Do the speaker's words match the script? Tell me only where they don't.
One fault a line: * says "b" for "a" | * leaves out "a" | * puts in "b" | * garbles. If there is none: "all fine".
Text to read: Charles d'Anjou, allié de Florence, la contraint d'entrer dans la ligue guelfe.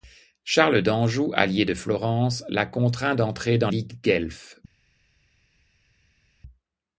* leaves out "la"